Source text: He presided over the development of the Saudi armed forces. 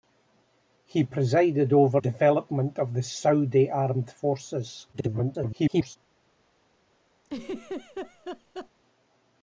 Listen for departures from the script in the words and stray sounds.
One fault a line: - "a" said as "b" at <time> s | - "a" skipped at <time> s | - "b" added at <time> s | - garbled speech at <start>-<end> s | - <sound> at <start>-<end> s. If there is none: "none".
- "the" skipped at 2.0 s
- garbled speech at 4.9-6.0 s
- laugh at 7.2-8.7 s